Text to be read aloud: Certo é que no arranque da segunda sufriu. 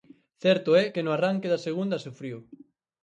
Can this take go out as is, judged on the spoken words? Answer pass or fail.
pass